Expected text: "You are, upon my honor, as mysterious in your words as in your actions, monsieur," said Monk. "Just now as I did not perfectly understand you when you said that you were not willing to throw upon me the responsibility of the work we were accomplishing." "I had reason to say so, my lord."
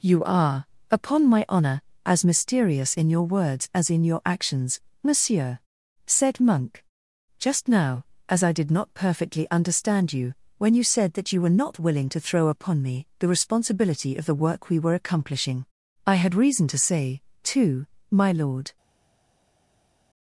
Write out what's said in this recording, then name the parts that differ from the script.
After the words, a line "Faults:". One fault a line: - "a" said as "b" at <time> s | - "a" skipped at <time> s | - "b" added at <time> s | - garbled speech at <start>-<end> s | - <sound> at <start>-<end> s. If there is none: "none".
"You are, upon my honor, as mysterious in your words as in your actions, monsieur," said Monk. "Just now as I did not perfectly understand you when you said that you were not willing to throw upon me the responsibility of the work we were accomplishing." "I had reason to say too, my lord."
Faults:
- "so" said as "too" at 17.4 s